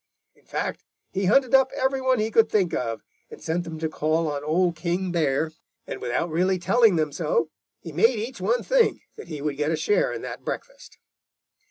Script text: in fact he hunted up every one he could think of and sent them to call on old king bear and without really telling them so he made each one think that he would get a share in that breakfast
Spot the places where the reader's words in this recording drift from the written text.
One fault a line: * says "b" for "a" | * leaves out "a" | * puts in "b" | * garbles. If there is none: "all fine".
all fine